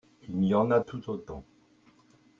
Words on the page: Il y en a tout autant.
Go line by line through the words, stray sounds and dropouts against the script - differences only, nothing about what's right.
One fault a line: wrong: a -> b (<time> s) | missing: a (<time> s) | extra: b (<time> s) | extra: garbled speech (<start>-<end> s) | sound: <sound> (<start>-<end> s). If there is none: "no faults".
no faults